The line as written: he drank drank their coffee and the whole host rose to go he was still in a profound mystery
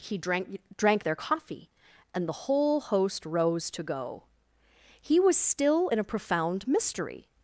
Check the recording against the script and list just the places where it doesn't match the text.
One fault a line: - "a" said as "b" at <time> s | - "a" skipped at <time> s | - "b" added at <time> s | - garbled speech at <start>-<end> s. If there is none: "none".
none